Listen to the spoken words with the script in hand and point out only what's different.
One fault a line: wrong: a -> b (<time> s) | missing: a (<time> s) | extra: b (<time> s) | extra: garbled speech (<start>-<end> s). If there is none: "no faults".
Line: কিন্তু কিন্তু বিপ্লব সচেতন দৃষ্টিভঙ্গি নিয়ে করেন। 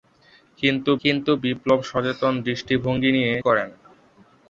no faults